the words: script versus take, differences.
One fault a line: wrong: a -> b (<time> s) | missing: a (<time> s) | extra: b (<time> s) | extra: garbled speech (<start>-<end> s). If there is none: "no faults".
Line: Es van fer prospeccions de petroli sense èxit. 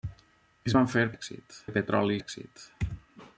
wrong: prospeccions -> èxit (1.1 s)
missing: sense (2.2 s)